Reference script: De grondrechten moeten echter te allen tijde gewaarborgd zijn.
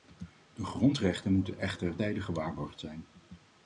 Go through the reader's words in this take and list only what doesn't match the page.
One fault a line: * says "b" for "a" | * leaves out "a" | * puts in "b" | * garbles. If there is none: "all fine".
* leaves out "te allen"